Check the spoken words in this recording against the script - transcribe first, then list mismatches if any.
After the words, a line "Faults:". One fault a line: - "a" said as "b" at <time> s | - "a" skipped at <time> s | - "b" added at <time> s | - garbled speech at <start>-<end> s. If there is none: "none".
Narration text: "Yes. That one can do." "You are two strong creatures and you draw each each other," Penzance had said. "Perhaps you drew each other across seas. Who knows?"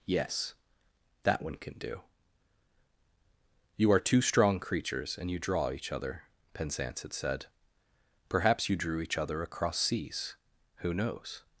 "Yes. That one can do." "You are two strong creatures and you draw each other," Penzance had said. "Perhaps you drew each other across seas. Who knows?"
Faults:
- "each" skipped at 5.9 s